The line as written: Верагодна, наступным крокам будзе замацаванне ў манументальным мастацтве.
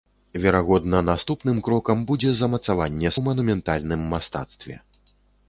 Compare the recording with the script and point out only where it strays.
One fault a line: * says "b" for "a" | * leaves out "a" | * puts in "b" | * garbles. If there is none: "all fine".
all fine